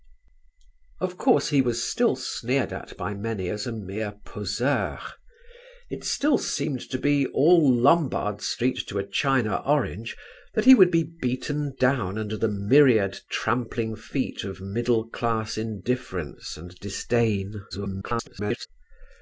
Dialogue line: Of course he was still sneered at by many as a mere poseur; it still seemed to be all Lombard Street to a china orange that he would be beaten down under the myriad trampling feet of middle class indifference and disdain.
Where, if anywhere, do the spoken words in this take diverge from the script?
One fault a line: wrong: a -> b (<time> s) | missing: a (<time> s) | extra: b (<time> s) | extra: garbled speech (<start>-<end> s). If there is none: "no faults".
extra: garbled speech (17.7-18.7 s)